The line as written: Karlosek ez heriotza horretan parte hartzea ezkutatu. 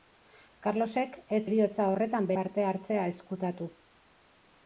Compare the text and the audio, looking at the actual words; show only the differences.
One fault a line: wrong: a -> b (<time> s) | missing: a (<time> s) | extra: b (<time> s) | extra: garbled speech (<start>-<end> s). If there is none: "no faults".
no faults